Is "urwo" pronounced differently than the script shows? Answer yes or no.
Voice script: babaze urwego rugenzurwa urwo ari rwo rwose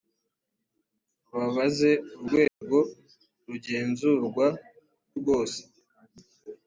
yes